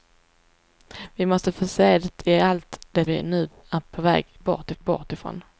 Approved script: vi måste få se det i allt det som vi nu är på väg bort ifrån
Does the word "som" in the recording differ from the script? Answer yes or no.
yes